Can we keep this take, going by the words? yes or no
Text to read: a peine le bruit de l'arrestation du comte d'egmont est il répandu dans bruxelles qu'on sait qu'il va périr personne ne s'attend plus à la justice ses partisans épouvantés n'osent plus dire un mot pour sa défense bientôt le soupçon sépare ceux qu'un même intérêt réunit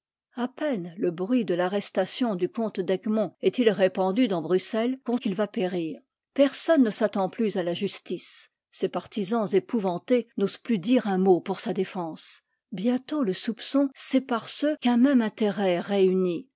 no